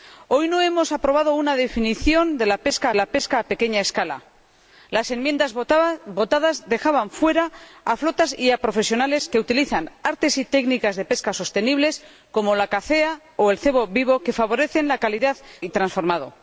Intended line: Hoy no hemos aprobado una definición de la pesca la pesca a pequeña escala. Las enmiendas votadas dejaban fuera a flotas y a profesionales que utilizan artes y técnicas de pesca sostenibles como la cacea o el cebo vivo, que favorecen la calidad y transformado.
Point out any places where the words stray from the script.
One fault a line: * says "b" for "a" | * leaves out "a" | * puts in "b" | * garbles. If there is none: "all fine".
all fine